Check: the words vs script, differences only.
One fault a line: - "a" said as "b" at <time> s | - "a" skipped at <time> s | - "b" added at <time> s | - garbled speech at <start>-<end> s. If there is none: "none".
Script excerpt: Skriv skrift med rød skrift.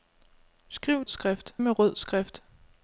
none